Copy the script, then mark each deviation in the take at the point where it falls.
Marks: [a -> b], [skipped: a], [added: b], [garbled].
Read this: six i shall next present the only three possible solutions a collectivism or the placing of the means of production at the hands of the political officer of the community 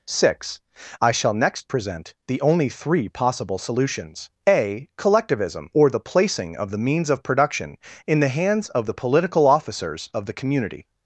six i shall next present the only three possible solutions a collectivism or the placing of the means of production [at -> in] the hands of the political [officer -> officers] of the community